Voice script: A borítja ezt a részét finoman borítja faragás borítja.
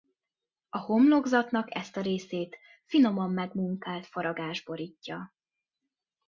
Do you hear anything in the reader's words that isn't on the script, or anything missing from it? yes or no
yes